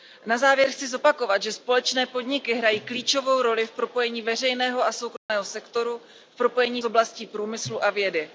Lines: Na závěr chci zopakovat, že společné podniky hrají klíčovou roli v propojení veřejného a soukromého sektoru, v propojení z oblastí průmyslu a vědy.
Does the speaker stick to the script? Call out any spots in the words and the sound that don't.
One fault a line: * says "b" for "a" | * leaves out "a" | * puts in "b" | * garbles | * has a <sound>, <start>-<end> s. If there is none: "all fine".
* has a dropout, 5.2-5.3 s